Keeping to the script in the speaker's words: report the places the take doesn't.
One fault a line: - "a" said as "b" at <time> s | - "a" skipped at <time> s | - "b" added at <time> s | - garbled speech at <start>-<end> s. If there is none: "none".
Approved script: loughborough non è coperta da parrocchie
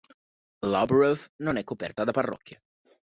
none